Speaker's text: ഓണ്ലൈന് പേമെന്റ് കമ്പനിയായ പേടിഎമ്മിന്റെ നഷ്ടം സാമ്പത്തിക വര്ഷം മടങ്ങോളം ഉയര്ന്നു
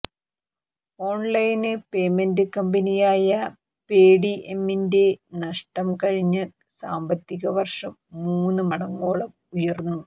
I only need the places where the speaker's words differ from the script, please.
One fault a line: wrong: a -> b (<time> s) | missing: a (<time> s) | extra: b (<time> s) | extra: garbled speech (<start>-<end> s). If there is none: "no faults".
extra: കഴിഞ്ഞ (6.0 s)
extra: മൂന്ന് (8.2 s)